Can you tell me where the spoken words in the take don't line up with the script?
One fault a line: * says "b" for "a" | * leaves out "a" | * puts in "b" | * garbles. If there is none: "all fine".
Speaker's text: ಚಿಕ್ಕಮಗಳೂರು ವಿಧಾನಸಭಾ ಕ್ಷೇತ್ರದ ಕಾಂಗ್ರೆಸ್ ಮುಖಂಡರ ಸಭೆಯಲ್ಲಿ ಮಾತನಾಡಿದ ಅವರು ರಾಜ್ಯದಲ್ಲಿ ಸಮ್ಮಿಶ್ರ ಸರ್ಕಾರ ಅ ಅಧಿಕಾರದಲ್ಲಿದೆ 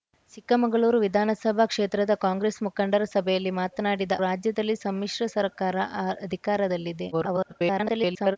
* leaves out "ಅವರು"
* garbles